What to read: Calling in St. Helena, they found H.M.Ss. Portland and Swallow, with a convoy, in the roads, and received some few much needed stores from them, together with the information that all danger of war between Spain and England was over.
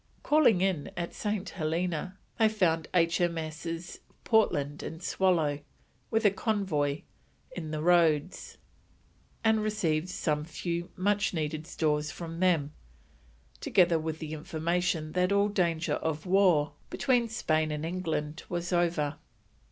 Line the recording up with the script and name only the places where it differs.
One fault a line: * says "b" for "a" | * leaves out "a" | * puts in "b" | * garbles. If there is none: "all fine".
* puts in "at"